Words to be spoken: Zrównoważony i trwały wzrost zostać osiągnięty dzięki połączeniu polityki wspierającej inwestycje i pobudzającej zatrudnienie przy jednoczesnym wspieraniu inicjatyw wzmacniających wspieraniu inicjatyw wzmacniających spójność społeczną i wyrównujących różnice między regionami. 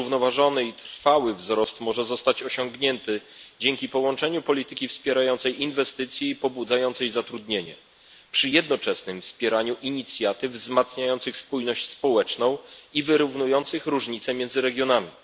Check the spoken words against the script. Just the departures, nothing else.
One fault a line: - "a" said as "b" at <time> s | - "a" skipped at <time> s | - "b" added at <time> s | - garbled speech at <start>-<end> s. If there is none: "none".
- "może" added at 1.8 s
- "wspieraniu inicjatyw wzmacniających" skipped at 11.4 s